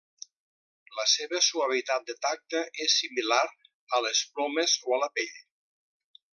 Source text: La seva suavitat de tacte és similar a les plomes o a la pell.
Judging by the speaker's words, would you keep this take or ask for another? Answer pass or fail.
pass